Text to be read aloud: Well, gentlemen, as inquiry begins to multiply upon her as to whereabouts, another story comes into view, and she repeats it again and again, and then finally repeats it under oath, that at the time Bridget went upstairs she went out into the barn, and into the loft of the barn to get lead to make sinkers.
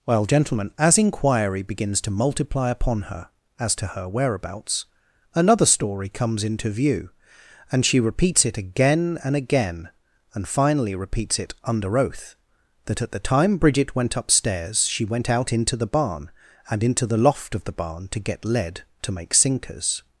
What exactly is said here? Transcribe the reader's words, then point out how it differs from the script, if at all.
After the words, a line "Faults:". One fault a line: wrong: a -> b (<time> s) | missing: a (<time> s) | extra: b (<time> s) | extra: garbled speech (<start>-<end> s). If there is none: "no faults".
Well, gentlemen, as inquiry begins to multiply upon her as to her whereabouts, another story comes into view, and she repeats it again and again, and finally repeats it under oath, that at the time Bridget went upstairs she went out into the barn, and into the loft of the barn to get lead to make sinkers.
Faults:
extra: her (3.9 s)
missing: then (10.5 s)